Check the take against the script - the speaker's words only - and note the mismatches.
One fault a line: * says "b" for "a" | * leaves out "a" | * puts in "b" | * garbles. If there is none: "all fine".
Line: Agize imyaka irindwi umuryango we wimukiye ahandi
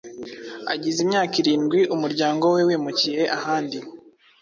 all fine